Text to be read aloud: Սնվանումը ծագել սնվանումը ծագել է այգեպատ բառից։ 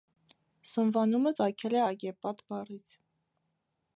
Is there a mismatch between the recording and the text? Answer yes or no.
yes